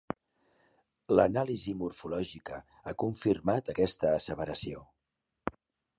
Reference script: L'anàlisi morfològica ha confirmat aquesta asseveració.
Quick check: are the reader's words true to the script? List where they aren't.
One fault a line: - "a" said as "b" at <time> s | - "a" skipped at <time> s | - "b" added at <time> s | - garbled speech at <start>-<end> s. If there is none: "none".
none